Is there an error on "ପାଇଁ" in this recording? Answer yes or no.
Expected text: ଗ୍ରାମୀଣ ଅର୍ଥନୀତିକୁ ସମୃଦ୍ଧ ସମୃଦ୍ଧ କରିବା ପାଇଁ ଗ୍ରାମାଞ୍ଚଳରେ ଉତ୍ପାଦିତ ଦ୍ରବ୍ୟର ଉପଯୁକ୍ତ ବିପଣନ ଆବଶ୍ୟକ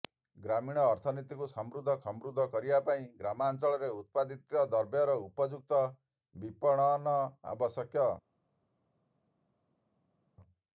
no